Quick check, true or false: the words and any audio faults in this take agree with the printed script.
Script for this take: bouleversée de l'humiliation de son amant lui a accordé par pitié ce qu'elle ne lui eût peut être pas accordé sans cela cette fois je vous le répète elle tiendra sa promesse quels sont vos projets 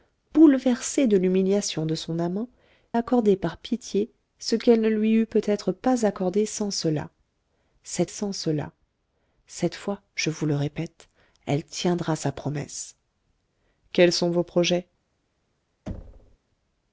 false